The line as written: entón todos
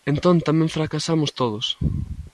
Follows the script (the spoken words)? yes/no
no